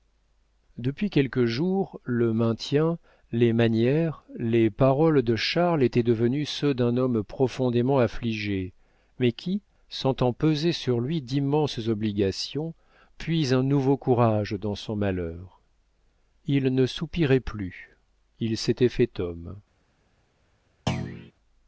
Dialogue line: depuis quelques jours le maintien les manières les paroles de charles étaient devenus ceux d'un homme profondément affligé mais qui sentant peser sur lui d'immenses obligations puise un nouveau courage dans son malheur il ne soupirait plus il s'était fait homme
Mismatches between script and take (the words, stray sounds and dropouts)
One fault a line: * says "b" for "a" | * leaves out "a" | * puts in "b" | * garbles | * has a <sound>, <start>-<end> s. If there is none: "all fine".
* has a thud, 20.9-21.3 s